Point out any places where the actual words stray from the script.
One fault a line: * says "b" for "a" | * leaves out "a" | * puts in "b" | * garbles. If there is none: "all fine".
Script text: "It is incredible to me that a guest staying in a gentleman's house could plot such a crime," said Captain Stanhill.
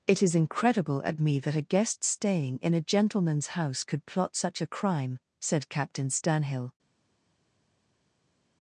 * says "at" for "to"